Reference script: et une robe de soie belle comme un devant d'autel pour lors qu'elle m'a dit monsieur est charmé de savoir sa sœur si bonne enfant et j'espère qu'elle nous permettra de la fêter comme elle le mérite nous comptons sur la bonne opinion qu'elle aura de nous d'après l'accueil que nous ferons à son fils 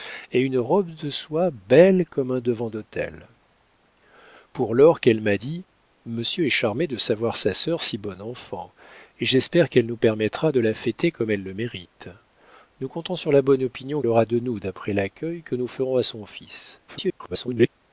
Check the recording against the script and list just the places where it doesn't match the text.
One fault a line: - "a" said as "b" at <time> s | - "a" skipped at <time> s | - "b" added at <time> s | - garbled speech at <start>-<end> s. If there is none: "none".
- "qu'elle" skipped at 14.0 s
- garbled speech at 16.9-17.7 s